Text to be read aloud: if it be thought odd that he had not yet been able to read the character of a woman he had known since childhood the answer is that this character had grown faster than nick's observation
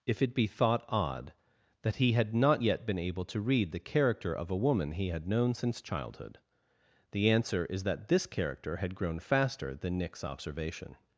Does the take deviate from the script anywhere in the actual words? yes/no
no